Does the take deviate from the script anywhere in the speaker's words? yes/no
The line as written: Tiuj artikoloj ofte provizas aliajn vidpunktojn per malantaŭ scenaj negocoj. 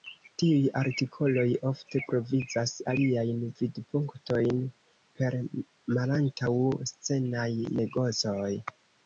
no